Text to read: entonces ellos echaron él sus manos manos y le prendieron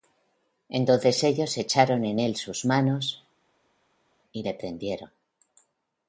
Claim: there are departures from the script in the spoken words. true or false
true